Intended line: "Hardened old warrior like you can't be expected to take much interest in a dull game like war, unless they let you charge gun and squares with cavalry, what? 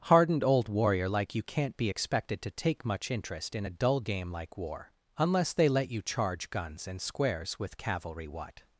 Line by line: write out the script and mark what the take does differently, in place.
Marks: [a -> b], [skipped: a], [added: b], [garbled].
"Hardened old warrior like you can't be expected to take much interest in a dull game like war, unless they let you charge [gun -> guns] and squares with cavalry, what?